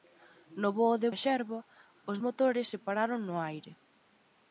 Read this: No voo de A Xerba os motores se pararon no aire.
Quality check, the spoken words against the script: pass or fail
pass